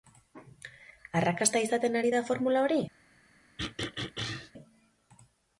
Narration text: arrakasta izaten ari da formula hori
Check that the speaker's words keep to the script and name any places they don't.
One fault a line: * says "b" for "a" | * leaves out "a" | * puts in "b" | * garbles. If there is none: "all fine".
all fine